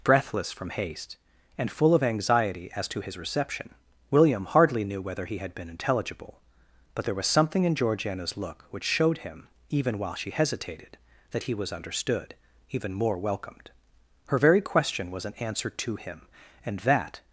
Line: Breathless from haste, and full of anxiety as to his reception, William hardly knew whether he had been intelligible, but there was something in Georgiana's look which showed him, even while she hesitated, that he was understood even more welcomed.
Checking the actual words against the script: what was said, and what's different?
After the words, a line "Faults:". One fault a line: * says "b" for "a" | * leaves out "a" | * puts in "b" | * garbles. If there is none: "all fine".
Breathless from haste, and full of anxiety as to his reception, William hardly knew whether he had been intelligible, but there was something in Georgiana's look which showed him, even while she hesitated, that he was understood even more welcomed. Her very question was an answer to him, and that
Faults:
* puts in "Her very question was an answer to him and that"